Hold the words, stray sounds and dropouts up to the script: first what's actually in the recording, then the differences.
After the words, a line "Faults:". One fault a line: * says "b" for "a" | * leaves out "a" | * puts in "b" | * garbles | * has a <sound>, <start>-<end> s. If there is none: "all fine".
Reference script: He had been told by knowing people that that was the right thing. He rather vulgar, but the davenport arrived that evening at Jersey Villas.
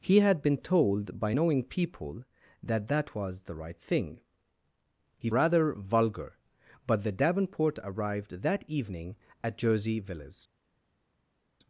He had been told by knowing people that that was the right thing. He rather vulgar, but the davenport arrived that evening at Jersey Villas.
Faults:
all fine